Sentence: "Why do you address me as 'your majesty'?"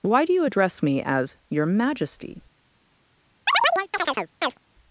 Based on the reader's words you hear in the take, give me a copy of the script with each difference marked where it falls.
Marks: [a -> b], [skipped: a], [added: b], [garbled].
"Why do you address me as 'your majesty'?"